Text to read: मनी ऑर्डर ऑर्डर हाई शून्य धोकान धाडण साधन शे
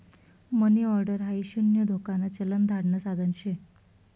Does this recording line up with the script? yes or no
no